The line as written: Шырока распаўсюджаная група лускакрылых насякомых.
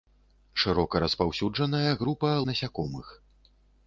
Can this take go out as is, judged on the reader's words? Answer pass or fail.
fail